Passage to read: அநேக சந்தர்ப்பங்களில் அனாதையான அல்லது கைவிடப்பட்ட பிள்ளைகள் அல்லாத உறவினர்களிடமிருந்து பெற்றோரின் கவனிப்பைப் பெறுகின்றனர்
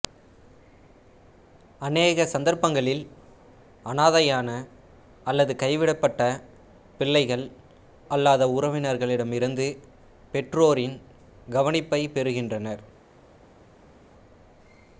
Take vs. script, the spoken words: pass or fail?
pass